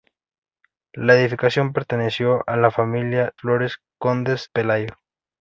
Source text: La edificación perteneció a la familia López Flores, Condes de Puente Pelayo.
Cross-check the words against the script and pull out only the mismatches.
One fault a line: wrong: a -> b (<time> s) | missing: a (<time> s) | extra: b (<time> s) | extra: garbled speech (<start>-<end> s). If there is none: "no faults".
missing: López (3.3 s)
missing: de Puente (4.5 s)